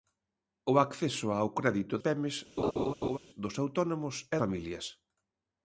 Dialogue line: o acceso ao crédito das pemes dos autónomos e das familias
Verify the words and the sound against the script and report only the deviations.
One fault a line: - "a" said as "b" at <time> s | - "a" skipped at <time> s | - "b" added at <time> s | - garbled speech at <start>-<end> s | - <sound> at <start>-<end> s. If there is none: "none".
- "das" skipped at 1.9 s
- laugh at 2.6-3.2 s
- "das" skipped at 4.4 s